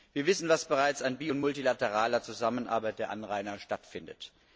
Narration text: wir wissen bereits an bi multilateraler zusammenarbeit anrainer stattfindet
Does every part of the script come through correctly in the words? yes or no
no